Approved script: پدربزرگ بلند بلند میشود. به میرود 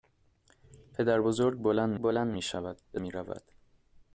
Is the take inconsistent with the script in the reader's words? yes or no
no